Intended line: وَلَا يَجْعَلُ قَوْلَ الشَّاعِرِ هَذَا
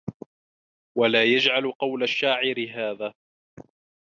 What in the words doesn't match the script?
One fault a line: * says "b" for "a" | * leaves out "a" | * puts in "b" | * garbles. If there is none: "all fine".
all fine